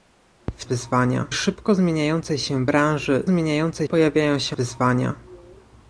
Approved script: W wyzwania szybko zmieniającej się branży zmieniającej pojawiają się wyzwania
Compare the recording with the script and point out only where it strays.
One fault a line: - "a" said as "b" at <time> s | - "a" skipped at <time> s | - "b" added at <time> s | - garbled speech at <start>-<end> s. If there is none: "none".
none